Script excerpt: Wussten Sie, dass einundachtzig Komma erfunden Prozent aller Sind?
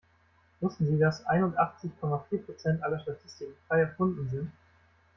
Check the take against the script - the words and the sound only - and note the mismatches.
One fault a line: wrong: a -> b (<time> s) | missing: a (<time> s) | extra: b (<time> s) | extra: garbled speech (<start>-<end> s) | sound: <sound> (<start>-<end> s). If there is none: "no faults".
wrong: erfunden -> vier (2.3 s)
extra: Statistiken frei erfunden (3.0 s)